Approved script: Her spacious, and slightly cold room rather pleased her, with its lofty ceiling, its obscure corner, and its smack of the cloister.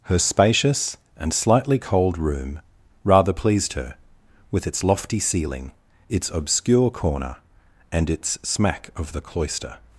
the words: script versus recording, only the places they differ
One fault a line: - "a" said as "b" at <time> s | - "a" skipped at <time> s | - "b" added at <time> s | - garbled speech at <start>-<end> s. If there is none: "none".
none